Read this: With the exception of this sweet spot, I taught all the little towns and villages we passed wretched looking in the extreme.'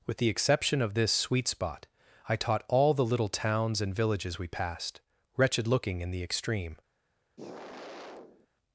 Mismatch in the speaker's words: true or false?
false